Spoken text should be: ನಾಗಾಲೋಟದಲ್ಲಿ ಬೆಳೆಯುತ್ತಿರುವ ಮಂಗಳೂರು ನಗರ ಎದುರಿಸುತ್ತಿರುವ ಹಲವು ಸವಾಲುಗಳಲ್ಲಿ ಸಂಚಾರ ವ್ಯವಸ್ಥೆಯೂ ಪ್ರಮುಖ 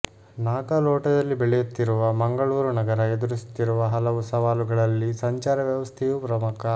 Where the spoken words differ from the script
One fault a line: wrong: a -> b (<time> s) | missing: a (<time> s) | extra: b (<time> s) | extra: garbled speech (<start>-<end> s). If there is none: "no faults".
no faults